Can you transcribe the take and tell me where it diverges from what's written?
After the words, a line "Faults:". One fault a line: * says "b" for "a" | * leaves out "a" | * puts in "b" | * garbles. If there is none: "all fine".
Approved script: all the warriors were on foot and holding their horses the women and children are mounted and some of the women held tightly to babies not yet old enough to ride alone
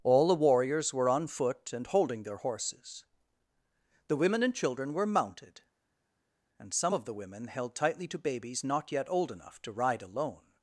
all the warriors were on foot and holding their horses the women and children were mounted and some of the women held tightly to babies not yet old enough to ride alone
Faults:
* says "were" for "are"